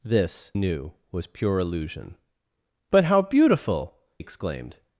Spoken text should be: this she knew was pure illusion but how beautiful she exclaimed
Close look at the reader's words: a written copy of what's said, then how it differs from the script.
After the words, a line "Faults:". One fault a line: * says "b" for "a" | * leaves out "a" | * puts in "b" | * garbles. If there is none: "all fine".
this knew was pure illusion but how beautiful exclaimed
Faults:
* leaves out "she"
* leaves out "she"